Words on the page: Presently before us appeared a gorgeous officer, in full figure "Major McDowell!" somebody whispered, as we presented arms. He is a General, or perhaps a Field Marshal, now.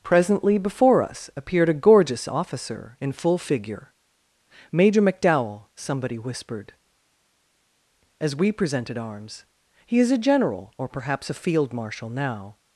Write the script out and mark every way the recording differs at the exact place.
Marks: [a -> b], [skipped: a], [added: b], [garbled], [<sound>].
Presently before us appeared a gorgeous officer, in full figure "Major McDowell!" somebody whispered, as we presented arms. He is a General, or perhaps a Field Marshal, now.